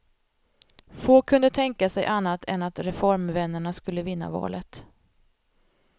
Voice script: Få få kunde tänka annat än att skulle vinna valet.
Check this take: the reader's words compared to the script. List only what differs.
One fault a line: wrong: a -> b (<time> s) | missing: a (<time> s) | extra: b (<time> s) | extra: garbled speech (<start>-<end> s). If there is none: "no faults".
missing: få (1.2 s)
extra: sig (1.9 s)
extra: reformvännerna (2.8 s)